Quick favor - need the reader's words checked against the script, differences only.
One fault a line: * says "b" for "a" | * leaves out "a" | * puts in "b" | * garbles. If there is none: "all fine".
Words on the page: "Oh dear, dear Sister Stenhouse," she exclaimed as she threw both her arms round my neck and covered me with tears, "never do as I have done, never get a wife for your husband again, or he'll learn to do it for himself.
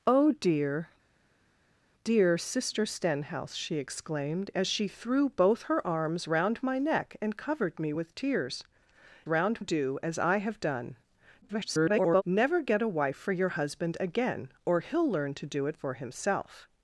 * says "round" for "never"
* garbles